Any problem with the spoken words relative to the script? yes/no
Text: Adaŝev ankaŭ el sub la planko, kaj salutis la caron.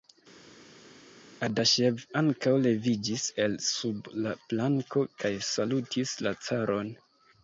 yes